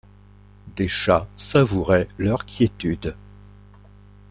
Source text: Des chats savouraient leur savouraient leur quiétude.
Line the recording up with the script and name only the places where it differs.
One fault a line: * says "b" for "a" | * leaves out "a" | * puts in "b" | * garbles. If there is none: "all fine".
* leaves out "savouraient leur"